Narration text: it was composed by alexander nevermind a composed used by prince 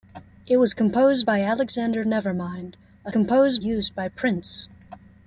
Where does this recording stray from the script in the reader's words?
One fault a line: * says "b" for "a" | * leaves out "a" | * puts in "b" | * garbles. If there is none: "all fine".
all fine